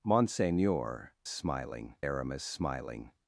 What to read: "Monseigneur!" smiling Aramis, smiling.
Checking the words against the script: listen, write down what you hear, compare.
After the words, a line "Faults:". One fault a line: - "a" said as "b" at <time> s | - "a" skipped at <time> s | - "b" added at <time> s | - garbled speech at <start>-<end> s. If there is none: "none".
"Monseigneur!" smiling Aramis, smiling.
Faults:
none